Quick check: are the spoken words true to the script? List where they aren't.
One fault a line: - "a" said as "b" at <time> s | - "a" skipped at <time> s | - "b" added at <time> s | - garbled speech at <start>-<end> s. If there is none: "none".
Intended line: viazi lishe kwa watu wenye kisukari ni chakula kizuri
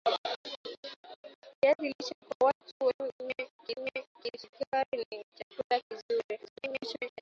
- "wenye" added at 3.8 s
- garbled speech at 6.5-7.2 s